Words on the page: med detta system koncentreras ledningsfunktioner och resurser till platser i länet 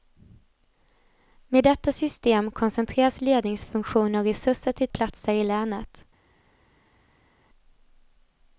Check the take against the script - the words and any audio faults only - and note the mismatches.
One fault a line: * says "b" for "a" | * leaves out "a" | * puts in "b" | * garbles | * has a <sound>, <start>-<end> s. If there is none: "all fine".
all fine